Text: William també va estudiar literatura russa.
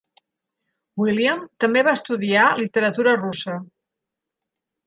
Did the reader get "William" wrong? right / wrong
right